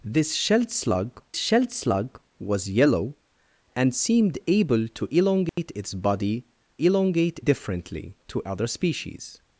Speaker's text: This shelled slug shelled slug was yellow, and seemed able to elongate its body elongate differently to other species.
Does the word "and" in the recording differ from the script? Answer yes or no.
no